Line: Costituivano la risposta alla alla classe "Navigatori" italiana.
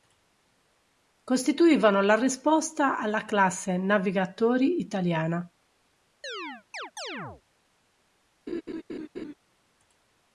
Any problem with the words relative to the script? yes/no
yes